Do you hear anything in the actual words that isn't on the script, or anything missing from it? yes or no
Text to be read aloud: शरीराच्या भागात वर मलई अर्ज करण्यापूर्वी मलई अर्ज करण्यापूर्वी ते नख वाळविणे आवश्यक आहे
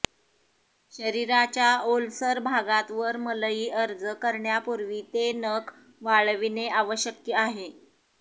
yes